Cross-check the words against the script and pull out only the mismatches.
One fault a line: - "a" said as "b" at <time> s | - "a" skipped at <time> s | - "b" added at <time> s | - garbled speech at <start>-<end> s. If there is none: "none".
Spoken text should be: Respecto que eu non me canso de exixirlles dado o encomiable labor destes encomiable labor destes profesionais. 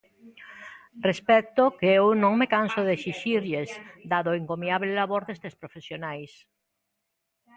- "encomiable labor destes" skipped at 5.5 s